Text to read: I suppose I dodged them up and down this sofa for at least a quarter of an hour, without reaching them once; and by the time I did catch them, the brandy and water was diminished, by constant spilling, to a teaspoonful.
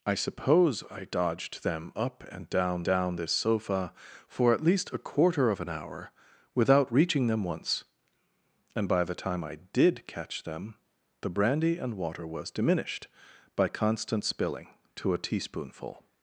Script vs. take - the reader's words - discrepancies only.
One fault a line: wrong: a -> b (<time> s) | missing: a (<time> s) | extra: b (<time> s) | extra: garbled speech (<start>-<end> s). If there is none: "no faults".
extra: down (2.8 s)